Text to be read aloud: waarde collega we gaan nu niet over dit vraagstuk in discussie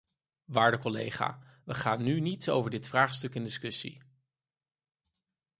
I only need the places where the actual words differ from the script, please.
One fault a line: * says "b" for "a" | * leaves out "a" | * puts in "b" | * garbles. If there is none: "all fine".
all fine